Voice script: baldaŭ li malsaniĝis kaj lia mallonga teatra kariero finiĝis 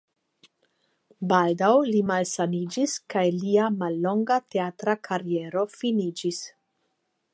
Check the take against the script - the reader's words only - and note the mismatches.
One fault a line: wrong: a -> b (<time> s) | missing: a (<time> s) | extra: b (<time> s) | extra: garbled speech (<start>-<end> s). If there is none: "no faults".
no faults